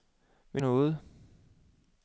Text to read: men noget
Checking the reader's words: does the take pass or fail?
pass